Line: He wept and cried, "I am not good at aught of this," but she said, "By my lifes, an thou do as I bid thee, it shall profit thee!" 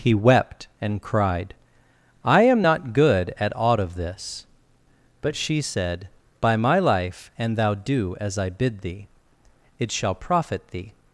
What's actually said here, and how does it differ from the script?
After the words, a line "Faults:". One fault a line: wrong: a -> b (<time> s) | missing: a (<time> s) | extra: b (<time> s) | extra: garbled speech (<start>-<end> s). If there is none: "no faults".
He wept and cried, "I am not good at aught of this," but she said, "By my life, an thou do as I bid thee, it shall profit thee!"
Faults:
wrong: lifes -> life (6.8 s)